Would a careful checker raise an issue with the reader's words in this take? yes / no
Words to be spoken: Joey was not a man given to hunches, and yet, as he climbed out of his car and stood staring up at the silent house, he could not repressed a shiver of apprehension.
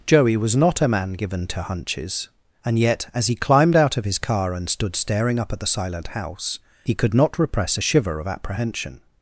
yes